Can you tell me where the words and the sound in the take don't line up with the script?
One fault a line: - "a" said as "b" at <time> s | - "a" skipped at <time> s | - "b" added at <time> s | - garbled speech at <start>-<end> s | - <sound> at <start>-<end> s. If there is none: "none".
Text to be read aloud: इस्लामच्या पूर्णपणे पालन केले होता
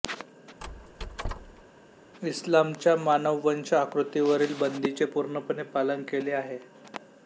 - squeak at 0.6-1.6 s
- "मानववंश आकृतीवरील बंदीचे" added at 3.0 s
- "होता" said as "आहे" at 6.3 s